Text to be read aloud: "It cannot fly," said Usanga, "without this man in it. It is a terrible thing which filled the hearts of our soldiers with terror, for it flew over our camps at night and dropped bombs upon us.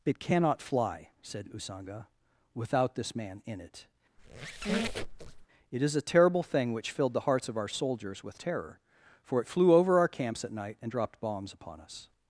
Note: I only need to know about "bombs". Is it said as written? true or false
true